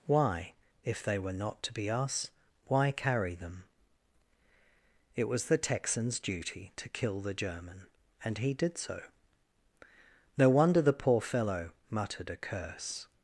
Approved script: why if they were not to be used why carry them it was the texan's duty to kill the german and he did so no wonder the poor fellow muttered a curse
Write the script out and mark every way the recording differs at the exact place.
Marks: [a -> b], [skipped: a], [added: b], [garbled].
why if they were not to be [used -> us] why carry them it was the texan's duty to kill the german and he did so no wonder the poor fellow muttered a curse